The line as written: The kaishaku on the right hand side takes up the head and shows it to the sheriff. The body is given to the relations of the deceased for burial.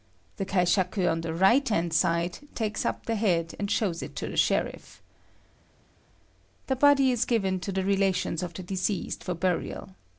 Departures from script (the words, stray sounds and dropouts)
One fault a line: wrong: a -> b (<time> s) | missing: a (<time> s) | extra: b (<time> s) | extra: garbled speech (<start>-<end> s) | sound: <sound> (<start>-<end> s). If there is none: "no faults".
no faults